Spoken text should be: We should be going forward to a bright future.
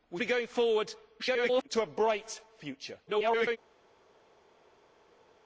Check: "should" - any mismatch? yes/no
yes